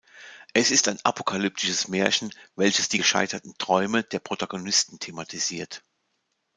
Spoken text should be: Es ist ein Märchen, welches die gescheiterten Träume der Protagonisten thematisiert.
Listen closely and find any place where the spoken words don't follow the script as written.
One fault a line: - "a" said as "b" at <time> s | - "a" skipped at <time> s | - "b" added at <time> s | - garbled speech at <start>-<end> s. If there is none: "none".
- "apokalyptisches" added at 1.0 s